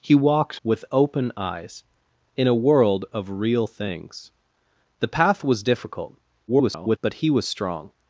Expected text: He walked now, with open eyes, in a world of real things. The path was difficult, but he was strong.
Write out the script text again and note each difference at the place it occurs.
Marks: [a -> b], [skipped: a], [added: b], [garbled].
He walked [skipped: now,] with open eyes, in a world of real things. The path was difficult, [garbled] but he was strong.